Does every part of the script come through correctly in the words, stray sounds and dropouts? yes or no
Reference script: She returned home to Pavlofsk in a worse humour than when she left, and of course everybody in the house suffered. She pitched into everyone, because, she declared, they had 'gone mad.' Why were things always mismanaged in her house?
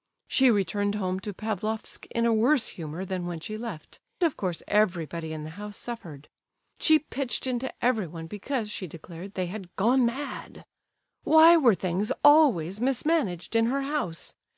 no